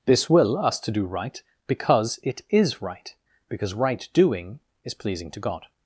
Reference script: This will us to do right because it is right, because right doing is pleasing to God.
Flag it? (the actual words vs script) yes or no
no